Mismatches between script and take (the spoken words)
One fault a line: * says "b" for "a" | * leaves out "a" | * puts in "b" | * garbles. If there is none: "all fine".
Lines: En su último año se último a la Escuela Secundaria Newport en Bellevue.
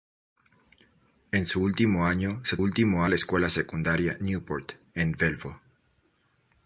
all fine